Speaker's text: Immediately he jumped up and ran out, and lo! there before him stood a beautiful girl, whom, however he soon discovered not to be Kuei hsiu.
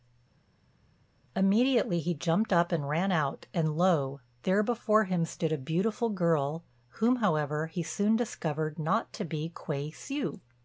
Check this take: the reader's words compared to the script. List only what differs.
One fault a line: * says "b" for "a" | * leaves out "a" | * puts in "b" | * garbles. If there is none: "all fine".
all fine